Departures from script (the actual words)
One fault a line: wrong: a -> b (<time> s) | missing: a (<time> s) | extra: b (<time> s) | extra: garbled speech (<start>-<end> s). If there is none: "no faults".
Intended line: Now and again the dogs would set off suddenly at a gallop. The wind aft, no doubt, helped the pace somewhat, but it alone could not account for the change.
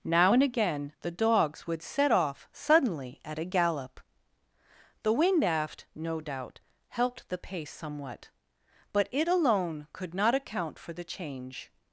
no faults